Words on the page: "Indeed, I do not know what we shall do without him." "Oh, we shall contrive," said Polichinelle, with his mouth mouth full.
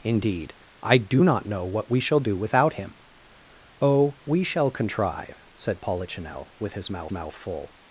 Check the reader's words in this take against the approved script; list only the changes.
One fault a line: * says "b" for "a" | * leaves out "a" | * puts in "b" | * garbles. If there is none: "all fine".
all fine